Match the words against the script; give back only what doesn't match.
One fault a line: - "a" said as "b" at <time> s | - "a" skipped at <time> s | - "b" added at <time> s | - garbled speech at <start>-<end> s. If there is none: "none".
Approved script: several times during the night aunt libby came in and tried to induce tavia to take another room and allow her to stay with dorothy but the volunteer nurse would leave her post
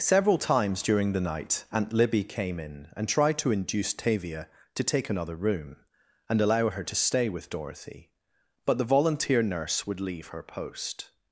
none